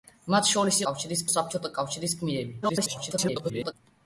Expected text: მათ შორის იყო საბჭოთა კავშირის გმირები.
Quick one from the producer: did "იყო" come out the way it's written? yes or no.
no